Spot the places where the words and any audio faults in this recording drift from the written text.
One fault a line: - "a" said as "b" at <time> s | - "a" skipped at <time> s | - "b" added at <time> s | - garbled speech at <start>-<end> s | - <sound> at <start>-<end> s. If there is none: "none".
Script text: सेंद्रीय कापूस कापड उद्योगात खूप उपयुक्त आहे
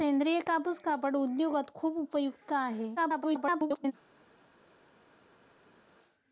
- garbled speech at 3.0-3.9 s